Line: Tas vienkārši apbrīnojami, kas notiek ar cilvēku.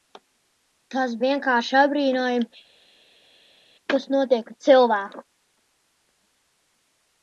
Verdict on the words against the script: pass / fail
pass